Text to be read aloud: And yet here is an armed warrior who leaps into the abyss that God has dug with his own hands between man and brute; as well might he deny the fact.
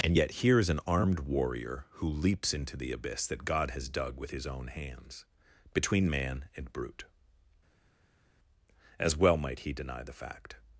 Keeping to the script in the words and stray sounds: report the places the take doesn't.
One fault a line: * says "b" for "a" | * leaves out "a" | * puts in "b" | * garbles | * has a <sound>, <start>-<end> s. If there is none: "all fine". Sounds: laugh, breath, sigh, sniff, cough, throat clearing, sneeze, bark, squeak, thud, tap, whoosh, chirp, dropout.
all fine